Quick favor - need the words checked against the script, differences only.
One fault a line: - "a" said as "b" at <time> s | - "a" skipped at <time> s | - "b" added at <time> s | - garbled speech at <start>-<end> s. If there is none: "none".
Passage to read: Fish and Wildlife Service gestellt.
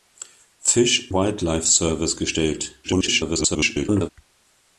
- "and" skipped at 1.1 s
- garbled speech at 2.8-4.1 s